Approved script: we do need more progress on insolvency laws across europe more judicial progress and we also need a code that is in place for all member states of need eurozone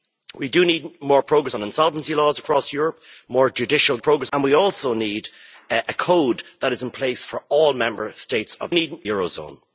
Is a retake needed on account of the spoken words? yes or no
no